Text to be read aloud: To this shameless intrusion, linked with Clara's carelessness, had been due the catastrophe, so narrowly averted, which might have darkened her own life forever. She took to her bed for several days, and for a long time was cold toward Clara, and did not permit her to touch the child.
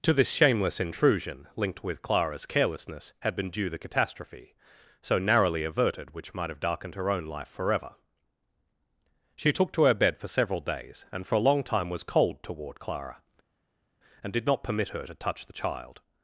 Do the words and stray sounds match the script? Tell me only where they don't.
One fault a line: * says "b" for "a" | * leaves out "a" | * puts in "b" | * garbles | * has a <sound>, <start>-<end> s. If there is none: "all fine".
all fine